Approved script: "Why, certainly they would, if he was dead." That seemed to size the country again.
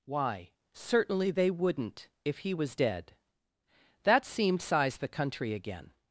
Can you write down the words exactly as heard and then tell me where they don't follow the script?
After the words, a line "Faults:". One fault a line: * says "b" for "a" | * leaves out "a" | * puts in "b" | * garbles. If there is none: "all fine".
"Why, certainly they wouldn't, if he was dead." That seemed size the country again.
Faults:
* says "wouldn't" for "would"
* leaves out "to"